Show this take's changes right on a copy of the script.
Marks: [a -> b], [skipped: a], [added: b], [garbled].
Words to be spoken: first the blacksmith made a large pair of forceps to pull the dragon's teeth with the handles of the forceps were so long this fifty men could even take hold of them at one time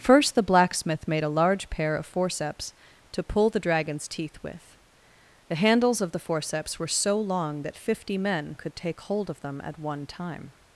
first the blacksmith made a large pair of forceps to pull the dragon's teeth with the handles of the forceps were so long [this -> that] fifty men could [skipped: even] take hold of them at one time